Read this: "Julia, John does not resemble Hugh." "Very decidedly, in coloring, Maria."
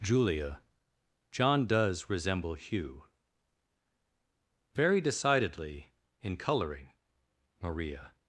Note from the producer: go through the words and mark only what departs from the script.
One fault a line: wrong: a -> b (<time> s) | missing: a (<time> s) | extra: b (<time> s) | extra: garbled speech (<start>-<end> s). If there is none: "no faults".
missing: not (2.1 s)